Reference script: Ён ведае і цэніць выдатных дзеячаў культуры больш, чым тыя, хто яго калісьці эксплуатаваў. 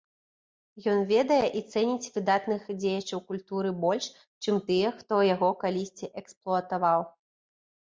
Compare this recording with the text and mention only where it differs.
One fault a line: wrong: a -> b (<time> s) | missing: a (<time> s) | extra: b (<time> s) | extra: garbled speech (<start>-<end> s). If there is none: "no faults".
no faults